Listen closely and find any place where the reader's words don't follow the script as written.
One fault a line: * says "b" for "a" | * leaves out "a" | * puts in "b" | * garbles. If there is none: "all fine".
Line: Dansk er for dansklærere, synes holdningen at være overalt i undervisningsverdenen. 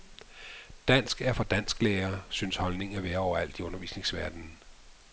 all fine